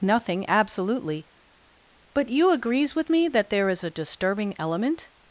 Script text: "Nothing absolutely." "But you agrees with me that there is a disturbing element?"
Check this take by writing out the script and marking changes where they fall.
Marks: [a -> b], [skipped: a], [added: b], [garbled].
"Nothing absolutely." "But you agrees with me that there is a disturbing element?"